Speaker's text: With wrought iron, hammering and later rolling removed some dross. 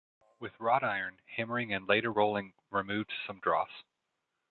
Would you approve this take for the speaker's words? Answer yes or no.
yes